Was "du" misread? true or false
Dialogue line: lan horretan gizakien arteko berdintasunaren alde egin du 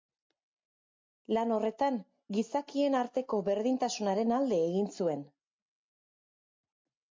true